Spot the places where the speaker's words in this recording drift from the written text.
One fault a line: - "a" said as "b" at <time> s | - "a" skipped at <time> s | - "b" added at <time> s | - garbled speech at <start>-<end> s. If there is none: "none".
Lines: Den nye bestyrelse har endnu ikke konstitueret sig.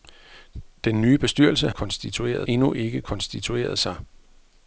- "har" said as "konstitueret" at 1.7 s